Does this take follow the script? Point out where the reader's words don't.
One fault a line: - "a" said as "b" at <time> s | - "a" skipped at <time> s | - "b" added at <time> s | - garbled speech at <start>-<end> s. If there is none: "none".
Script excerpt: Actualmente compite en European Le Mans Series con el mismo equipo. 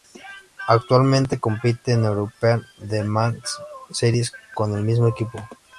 none